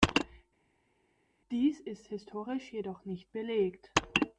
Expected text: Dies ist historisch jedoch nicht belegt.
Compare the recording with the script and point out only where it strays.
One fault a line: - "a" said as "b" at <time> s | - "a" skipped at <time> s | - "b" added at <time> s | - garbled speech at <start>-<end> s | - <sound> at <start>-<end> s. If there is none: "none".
none